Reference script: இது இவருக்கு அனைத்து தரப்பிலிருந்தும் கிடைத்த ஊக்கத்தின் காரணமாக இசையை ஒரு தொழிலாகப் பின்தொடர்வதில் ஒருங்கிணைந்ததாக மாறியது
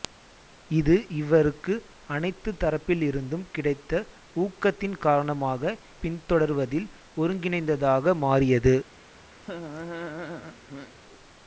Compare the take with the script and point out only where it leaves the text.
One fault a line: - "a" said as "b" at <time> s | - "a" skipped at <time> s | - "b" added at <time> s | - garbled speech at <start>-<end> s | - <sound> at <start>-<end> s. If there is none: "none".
- "இசையை ஒரு தொழிலாகப்" skipped at 5.7 s
- laugh at 9.4-10.9 s